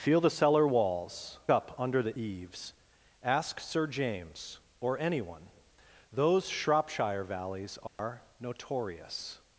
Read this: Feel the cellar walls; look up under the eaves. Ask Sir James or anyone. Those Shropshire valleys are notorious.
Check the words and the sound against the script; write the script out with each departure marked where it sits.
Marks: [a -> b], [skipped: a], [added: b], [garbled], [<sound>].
Feel the cellar walls; [skipped: look] up under the eaves. Ask Sir James or anyone. Those Shropshire valleys are [dropout] notorious.